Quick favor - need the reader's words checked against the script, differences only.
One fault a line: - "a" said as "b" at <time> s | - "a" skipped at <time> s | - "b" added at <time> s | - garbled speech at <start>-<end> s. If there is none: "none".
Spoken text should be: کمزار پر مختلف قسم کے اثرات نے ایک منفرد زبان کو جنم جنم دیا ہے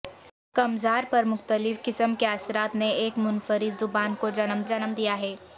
none